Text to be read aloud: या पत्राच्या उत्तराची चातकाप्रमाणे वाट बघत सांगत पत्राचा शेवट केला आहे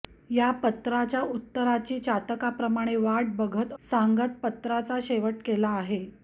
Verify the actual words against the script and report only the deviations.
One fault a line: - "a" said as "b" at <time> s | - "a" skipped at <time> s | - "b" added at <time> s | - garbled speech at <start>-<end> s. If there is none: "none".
none